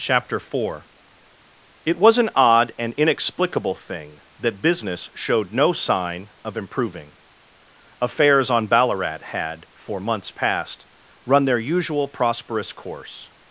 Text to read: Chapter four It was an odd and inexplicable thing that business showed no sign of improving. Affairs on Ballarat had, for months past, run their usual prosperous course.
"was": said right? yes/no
yes